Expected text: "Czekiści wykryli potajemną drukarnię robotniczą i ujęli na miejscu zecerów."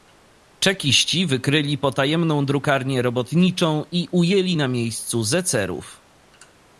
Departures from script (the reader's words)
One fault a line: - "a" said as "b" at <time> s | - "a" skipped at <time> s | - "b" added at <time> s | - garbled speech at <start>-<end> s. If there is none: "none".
none